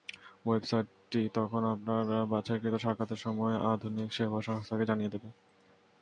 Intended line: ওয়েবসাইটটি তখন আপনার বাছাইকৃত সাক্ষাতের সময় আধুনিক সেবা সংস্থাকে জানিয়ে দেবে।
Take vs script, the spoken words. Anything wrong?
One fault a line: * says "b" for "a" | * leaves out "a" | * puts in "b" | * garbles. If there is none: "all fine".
all fine